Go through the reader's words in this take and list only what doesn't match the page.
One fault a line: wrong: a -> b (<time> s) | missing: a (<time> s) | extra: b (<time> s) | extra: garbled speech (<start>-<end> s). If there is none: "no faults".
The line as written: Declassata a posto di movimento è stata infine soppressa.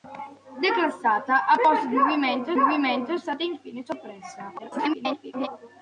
extra: movimento (2.6 s)
extra: garbled speech (4.6-5.5 s)